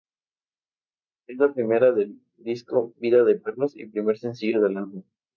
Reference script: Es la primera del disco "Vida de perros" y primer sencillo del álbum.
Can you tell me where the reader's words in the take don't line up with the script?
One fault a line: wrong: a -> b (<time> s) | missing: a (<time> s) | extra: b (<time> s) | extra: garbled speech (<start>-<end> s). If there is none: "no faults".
no faults